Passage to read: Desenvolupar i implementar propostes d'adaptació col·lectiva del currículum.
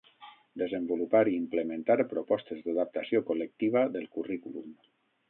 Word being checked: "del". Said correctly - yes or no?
yes